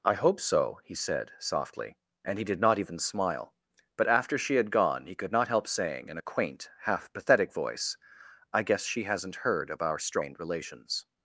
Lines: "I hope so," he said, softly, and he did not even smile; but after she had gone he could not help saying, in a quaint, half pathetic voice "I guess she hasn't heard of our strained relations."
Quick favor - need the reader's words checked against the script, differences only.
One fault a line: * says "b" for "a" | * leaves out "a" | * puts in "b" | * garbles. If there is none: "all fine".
all fine